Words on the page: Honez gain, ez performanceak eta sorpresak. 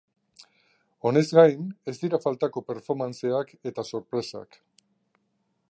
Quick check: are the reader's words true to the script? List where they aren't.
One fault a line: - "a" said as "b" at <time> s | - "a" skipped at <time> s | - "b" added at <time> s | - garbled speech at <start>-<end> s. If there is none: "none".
- "dira faltako" added at 2.0 s